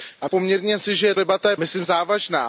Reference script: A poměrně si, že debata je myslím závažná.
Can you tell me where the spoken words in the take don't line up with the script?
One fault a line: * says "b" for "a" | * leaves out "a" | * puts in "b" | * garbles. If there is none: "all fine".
all fine